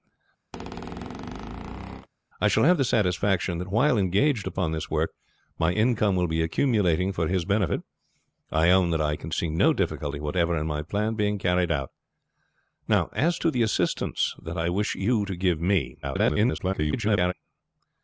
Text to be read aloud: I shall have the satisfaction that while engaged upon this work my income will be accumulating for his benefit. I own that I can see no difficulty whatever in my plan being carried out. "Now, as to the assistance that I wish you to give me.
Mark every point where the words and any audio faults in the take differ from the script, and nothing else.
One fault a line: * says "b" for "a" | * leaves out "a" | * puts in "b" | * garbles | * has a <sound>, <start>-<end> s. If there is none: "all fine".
* has a squeak, 0.5-2.1 s
* garbles